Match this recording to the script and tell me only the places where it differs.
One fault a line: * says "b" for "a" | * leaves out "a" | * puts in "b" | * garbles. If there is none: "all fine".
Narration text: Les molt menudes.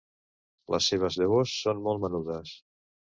* puts in "seves llavors són"